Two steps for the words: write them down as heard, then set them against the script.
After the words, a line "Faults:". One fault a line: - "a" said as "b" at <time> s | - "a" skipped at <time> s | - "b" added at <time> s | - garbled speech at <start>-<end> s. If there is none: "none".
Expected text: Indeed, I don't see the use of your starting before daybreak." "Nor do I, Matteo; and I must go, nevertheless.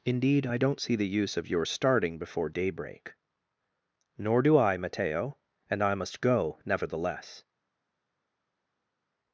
Indeed, I don't see the use of your starting before daybreak." "Nor do I, Matteo; and I must go, nevertheless.
Faults:
none